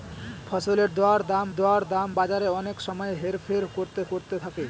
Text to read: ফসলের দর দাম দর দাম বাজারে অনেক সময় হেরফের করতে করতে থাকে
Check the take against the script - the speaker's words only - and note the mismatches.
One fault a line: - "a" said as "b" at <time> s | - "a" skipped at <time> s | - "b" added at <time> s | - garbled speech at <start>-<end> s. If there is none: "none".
none